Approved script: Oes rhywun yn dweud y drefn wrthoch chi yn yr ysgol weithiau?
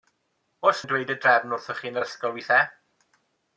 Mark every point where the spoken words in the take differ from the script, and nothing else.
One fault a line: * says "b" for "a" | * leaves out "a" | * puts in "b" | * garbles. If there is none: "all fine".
* leaves out "rhywun"